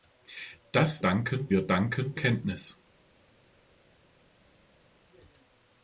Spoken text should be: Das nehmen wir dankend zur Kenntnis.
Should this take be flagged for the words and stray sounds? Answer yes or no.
yes